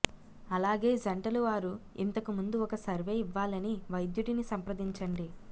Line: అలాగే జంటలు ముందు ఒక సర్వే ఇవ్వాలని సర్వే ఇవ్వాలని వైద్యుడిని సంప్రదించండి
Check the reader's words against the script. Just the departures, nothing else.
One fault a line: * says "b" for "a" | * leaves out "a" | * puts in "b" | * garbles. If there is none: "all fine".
* puts in "వారు ఇంతకు"
* leaves out "సర్వే ఇవ్వాలని"